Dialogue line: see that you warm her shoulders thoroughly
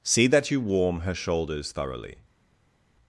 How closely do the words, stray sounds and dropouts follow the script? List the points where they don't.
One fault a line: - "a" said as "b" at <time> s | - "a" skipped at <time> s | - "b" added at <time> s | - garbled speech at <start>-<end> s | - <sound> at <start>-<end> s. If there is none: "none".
none